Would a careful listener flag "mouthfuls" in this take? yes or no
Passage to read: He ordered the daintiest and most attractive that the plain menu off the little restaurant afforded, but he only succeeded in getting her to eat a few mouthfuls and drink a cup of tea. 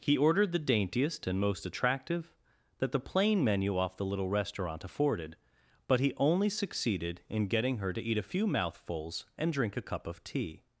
no